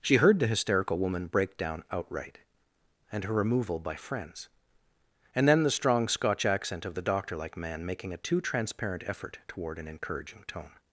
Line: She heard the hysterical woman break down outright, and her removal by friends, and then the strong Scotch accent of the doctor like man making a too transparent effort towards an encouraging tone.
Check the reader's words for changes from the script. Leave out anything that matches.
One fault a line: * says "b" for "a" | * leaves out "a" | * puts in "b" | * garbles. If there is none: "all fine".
* says "toward" for "towards"